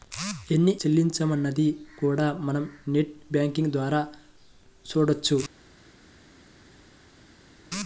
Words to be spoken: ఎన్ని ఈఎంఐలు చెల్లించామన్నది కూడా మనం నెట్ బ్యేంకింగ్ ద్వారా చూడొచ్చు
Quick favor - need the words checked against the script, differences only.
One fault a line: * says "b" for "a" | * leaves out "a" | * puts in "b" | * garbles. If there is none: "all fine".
* leaves out "ఈఎంఐలు"